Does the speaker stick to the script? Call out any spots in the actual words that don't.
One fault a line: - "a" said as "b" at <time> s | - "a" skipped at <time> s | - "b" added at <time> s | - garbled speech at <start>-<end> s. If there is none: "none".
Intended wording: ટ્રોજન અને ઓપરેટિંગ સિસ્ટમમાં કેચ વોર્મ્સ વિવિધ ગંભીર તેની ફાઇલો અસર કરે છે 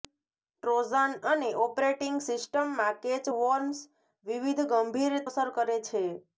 - "તેની ફાઇલો" skipped at 5.2 s